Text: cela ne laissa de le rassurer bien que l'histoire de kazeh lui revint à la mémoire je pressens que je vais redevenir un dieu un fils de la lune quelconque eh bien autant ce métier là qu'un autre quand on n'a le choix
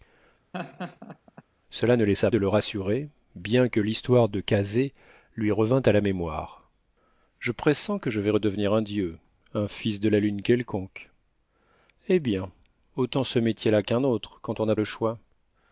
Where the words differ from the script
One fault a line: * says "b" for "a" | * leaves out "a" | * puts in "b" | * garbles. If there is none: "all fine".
all fine